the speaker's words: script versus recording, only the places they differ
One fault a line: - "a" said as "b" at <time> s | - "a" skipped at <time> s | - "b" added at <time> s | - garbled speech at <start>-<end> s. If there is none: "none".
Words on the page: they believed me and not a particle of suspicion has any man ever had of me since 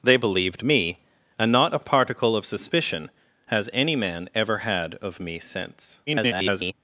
- garbled speech at 6.1-6.7 s